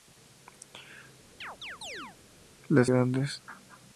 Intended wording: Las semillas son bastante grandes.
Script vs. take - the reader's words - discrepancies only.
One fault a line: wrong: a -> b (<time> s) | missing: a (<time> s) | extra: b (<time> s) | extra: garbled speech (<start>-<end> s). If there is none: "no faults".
missing: semillas son bastante (2.9 s)